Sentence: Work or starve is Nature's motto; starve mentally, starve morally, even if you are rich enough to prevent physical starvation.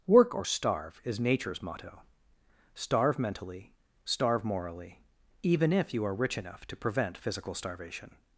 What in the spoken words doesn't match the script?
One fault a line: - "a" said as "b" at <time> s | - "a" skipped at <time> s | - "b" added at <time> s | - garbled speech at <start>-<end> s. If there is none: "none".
none